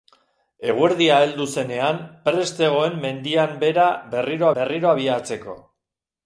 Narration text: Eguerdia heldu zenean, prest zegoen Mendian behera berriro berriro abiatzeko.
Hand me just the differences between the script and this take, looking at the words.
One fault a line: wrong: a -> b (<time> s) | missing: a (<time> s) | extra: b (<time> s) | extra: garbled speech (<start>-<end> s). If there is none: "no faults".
no faults